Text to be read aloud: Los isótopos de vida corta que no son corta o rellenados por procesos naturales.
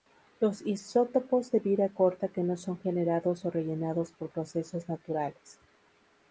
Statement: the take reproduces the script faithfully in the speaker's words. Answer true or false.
false